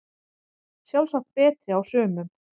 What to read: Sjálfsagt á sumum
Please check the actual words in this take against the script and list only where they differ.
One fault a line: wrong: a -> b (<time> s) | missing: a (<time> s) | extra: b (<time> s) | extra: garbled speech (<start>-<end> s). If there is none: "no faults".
extra: betri (1.4 s)